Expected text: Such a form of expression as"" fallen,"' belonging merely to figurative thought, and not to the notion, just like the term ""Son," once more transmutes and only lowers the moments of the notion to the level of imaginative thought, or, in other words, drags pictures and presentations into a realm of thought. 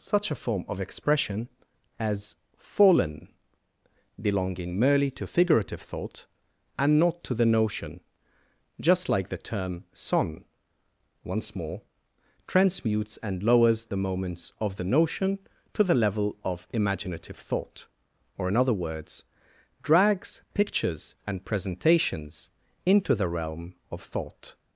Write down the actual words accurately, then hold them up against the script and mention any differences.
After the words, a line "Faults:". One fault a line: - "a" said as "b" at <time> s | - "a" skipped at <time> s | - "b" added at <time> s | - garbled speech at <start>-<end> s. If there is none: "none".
Such a form of expression as"" fallen,"' belonging merely to figurative thought, and not to the notion, just like the term ""Son," once more transmutes and lowers the moments of the notion to the level of imaginative thought, or, in other words, drags pictures and presentations into the realm of thought.
Faults:
- "only" skipped at 13.4 s
- "a" said as "the" at 23.1 s